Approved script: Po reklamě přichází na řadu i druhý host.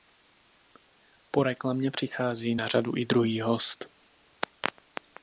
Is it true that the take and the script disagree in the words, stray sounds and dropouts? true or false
false